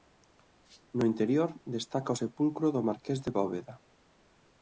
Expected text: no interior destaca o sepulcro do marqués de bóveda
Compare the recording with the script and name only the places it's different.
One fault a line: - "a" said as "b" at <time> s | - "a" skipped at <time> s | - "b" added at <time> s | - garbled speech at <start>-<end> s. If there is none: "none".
none